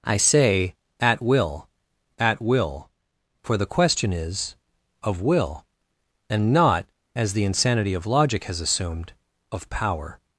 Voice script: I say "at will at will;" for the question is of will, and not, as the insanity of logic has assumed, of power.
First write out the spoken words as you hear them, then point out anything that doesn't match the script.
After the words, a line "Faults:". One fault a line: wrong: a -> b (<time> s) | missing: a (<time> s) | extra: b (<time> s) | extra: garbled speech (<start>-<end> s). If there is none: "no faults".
I say "at will at will;" for the question is of will, and not, as the insanity of logic has assumed, of power.
Faults:
no faults